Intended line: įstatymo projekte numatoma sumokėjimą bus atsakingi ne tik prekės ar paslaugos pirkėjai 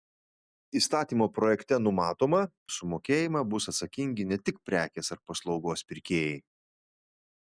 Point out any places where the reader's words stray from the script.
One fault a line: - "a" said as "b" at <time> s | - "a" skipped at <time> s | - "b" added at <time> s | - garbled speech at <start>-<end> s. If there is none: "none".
none